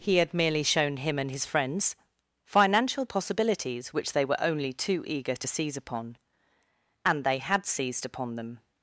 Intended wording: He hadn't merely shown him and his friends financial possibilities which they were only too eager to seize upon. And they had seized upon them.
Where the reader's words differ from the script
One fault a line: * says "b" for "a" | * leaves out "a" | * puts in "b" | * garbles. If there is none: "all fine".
* says "had" for "hadn't"